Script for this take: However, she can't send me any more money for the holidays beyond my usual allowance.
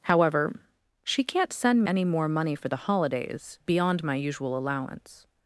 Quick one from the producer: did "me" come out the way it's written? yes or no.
no